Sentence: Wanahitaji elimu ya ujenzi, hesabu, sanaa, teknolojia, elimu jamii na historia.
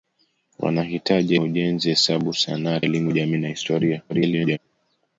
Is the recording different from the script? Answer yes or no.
yes